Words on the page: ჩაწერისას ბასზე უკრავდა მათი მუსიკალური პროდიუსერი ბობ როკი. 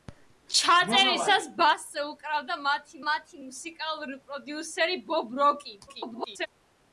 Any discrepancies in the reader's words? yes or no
yes